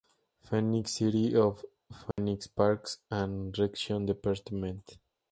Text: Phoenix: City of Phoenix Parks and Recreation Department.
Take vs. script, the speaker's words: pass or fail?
pass